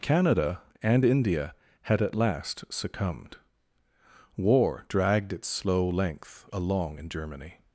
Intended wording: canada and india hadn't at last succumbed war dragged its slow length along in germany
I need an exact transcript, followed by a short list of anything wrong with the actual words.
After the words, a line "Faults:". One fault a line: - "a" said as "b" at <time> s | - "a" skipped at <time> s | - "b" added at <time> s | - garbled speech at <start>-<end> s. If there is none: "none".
canada and india had at last succumbed war dragged its slow length along in germany
Faults:
- "hadn't" said as "had" at 1.8 s